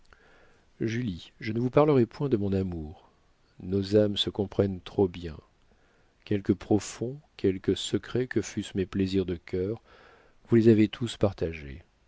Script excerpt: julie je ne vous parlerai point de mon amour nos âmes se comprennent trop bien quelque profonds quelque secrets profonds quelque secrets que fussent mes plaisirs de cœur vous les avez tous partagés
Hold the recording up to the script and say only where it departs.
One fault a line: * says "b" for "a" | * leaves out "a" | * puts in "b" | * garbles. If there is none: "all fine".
* leaves out "profonds quelque secrets"